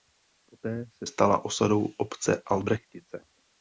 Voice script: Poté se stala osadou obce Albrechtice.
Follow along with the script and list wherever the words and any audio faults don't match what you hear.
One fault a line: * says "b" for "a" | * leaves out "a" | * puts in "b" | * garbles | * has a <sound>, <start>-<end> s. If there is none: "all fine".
all fine